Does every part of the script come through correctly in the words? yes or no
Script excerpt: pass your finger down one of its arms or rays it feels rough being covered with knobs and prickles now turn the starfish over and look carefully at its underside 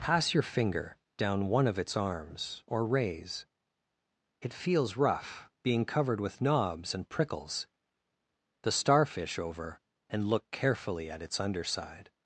no